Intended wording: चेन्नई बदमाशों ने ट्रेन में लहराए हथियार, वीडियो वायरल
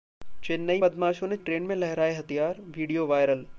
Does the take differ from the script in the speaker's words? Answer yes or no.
no